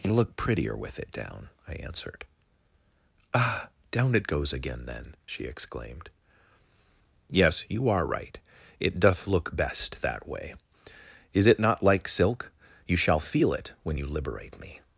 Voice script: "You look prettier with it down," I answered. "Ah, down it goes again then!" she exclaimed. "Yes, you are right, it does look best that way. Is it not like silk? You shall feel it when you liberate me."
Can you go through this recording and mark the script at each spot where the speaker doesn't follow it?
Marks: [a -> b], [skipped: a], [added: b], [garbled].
"You look prettier with it down," I answered. "Ah, down it goes again then!" she exclaimed. "Yes, you are right, it [does -> doth] look best that way. Is it not like silk? You shall feel it when you liberate me."